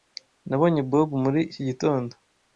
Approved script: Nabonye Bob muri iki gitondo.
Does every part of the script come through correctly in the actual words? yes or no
yes